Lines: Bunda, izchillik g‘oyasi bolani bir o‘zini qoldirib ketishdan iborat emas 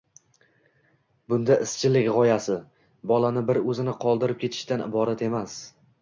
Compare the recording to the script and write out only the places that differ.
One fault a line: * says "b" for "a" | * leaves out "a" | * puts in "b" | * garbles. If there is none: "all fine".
all fine